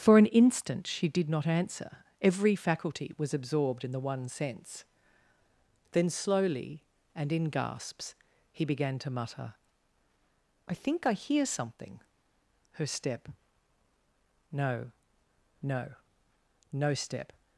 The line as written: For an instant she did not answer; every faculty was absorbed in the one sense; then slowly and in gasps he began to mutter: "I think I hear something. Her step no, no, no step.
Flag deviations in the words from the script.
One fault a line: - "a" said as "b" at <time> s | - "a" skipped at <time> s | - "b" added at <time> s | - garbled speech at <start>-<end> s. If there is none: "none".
none